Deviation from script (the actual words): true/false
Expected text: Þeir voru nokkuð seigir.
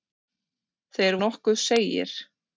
true